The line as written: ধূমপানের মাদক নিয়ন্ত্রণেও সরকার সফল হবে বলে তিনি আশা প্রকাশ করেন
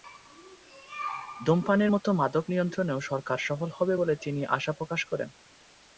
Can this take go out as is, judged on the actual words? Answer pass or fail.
fail